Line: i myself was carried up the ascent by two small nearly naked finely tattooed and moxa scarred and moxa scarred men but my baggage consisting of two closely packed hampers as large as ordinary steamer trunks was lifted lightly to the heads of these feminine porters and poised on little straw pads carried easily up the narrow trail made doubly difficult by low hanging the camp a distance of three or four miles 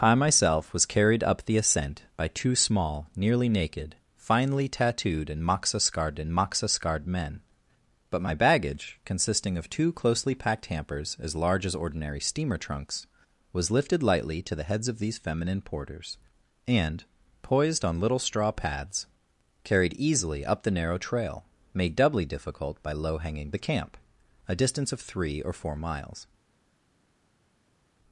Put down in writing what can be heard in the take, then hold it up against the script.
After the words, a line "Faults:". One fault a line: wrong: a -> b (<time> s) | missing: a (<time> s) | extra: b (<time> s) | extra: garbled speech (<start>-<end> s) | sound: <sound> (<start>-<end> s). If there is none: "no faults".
i myself was carried up the ascent by two small nearly naked finely tattooed and moxa scarred and moxa scarred men but my baggage consisting of two closely packed hampers as large as ordinary steamer trunks was lifted lightly to the heads of these feminine porters and poised on little straw pads carried easily up the narrow trail made doubly difficult by low hanging the camp a distance of three or four miles
Faults:
no faults